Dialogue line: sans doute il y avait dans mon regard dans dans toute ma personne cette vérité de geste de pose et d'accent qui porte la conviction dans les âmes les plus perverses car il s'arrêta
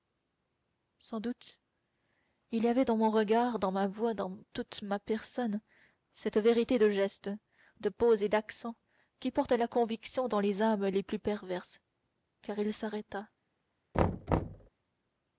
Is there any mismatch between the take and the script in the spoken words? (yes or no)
yes